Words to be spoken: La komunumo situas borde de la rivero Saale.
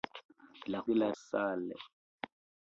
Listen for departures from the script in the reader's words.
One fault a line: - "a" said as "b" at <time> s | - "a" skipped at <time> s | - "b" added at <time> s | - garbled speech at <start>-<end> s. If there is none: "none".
- "komunumo situas borde" skipped at 0.8 s
- "rivero" skipped at 1.1 s